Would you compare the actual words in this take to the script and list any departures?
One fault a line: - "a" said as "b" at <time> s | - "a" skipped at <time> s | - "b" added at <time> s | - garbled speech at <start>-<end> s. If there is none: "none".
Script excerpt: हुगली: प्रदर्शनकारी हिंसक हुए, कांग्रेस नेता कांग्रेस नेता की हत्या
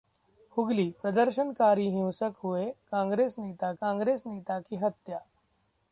none